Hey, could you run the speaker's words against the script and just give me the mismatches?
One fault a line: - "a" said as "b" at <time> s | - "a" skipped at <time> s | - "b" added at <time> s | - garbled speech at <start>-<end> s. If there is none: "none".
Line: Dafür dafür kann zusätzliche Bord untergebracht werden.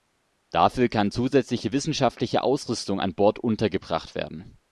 - "dafür" skipped at 0.9 s
- "wissenschaftliche Ausrüstung an" added at 1.7 s